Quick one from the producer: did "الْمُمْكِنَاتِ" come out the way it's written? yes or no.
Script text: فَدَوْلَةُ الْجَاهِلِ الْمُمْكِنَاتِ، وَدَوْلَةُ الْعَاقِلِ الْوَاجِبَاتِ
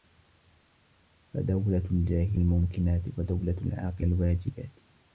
yes